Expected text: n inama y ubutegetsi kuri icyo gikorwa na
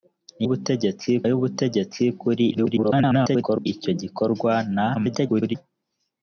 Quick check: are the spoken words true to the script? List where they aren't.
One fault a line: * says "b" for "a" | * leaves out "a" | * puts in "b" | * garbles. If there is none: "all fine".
* says "ubutegetsi" for "inama"
* garbles
* garbles